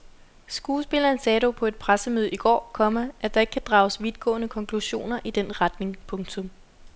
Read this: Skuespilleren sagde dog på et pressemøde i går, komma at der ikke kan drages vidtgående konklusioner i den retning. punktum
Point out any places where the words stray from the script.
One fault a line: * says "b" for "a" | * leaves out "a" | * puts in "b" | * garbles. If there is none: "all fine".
all fine